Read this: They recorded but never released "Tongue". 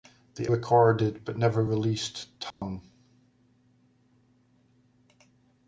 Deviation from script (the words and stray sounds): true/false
true